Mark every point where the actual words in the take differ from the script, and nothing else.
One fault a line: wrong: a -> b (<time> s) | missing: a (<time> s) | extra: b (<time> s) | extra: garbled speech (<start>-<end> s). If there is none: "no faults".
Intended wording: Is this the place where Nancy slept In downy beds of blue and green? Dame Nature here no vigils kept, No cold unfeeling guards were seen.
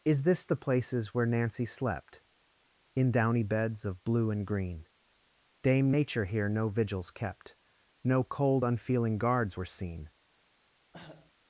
wrong: place -> places (0.6 s)